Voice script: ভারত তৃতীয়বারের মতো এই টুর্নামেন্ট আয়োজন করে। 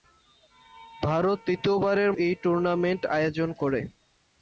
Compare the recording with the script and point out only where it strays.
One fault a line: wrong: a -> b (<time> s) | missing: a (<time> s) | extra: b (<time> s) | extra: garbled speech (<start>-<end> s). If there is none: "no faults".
missing: মতো (2.1 s)